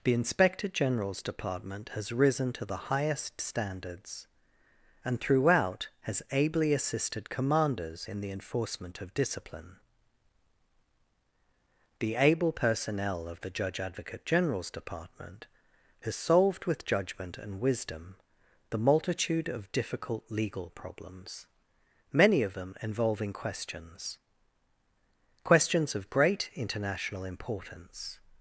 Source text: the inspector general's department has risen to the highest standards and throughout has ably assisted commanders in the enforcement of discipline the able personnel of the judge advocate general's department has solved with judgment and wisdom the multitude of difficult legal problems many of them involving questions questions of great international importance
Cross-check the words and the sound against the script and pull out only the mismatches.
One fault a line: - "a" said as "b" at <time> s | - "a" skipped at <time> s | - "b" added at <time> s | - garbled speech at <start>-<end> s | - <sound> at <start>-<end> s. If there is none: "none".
none